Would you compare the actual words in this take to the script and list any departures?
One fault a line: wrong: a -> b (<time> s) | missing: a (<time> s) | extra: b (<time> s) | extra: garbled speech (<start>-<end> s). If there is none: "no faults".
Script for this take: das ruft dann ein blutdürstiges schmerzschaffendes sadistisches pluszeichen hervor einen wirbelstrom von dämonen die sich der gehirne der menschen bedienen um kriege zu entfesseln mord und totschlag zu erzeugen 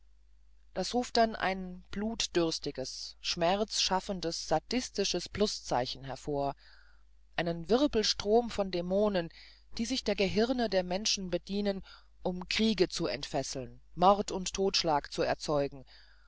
no faults